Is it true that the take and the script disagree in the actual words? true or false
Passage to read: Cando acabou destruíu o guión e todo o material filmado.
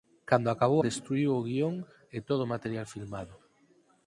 false